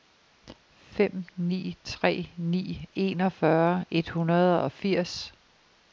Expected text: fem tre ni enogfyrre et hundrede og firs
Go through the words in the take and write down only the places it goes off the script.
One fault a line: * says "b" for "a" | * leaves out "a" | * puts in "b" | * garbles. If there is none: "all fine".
* puts in "ni"